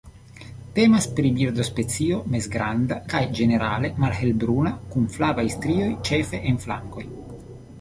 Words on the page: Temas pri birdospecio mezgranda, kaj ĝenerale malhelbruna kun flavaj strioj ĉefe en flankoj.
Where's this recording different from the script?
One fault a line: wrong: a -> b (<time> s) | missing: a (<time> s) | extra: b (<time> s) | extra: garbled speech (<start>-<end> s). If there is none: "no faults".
no faults